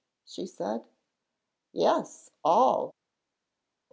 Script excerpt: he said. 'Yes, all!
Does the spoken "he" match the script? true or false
false